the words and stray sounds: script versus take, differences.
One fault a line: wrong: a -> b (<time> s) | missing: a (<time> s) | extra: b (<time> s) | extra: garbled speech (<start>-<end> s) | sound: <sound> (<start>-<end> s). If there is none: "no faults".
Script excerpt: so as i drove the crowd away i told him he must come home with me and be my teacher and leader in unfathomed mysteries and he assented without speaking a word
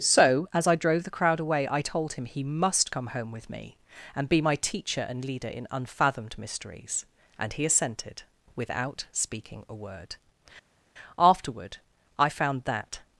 extra: afterward i found that (11.4 s)